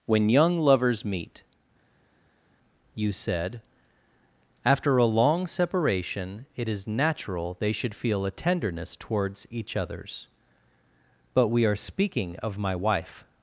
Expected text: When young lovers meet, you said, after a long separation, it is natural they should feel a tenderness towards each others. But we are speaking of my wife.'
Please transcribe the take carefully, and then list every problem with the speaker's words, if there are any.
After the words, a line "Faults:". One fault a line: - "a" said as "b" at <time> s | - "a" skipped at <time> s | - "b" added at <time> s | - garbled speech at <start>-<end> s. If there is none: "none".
When young lovers meet, you said, after a long separation, it is natural they should feel a tenderness towards each others. But we are speaking of my wife.'
Faults:
none